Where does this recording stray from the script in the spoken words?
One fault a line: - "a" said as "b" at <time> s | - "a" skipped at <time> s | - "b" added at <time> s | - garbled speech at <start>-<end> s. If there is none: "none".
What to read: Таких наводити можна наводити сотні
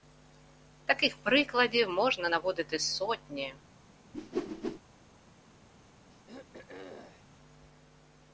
- "наводити" said as "прикладів" at 1.2 s